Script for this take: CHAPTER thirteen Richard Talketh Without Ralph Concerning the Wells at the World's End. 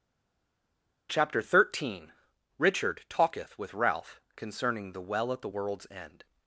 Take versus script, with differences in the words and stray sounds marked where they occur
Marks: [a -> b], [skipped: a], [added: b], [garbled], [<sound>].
CHAPTER thirteen Richard Talketh [Without -> With] Ralph Concerning the [Wells -> Well] at the World's End.